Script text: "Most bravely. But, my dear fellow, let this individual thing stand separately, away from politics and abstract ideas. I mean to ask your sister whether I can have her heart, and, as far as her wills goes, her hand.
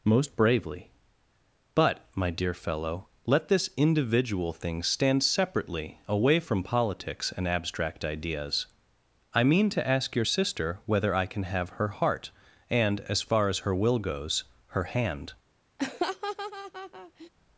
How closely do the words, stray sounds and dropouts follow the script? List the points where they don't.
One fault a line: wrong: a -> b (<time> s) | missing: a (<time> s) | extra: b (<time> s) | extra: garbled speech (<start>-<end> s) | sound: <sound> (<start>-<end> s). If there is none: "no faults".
wrong: wills -> will (13.7 s)
sound: laugh (15.8-17.3 s)